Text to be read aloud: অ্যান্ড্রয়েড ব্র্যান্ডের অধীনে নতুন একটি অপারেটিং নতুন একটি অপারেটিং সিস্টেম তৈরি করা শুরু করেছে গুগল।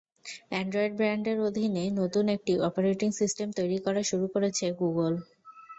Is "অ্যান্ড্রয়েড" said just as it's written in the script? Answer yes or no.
yes